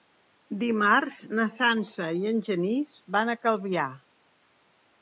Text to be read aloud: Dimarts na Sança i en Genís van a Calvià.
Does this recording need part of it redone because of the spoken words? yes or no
no